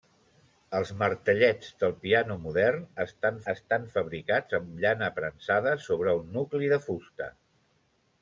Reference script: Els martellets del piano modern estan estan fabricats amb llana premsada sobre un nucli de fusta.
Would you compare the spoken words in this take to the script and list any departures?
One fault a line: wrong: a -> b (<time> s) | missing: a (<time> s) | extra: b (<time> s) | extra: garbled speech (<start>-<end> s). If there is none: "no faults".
no faults